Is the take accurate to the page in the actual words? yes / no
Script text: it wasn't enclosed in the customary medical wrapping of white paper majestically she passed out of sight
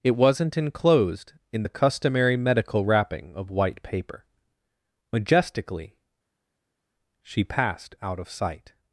yes